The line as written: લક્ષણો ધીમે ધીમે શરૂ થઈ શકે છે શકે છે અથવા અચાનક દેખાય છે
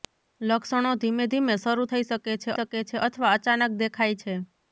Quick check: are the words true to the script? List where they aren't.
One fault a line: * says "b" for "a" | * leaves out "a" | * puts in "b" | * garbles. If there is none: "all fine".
all fine